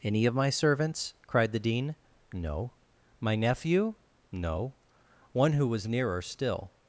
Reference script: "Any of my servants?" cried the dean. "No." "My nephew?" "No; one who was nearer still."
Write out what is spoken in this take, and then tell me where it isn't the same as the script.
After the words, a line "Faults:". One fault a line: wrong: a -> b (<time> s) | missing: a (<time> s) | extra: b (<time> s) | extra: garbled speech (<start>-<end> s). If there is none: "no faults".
"Any of my servants?" cried the dean. "No." "My nephew?" "No; one who was nearer still."
Faults:
no faults